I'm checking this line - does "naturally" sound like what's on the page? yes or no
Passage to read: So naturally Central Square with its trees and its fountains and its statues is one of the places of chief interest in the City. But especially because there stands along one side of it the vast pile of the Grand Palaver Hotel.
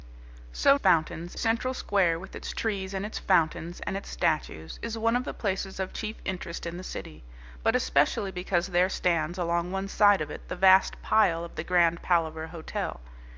no